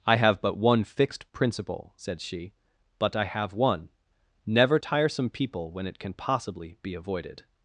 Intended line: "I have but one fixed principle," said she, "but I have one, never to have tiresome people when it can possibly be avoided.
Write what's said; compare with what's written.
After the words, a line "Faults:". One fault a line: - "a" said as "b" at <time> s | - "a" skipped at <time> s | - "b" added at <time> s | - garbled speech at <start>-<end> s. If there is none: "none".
"I have but one fixed principle," said she, "but I have one, never tiresome people when it can possibly be avoided.
Faults:
- "to have" skipped at 4.8 s